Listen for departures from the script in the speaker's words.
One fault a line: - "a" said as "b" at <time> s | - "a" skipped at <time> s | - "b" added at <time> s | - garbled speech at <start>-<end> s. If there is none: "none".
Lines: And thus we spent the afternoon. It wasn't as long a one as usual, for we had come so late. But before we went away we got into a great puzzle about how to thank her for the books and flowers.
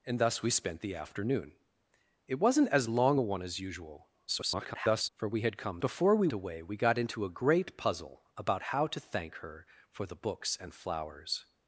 - garbled speech at 4.3-5.1 s
- "so late But" skipped at 5.8 s
- "went" skipped at 6.3 s